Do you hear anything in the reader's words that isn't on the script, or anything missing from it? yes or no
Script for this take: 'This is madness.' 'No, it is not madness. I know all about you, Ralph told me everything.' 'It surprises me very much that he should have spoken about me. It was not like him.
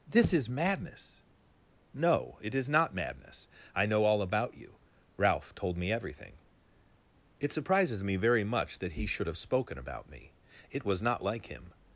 no